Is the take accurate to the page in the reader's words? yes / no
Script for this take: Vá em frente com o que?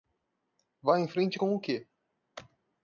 yes